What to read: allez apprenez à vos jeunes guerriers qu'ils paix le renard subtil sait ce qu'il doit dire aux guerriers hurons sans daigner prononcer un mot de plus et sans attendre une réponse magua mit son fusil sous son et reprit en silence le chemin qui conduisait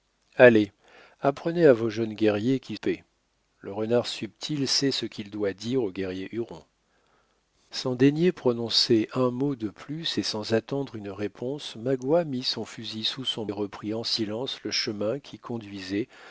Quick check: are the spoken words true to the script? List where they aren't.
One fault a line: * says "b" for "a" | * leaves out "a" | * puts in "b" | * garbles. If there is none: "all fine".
all fine